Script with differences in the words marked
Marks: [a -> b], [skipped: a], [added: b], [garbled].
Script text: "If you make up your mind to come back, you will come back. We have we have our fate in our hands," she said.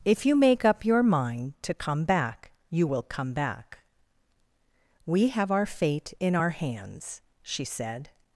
"If you make up your mind to come back, you will come back. We have [skipped: we have] our fate in our hands," she said.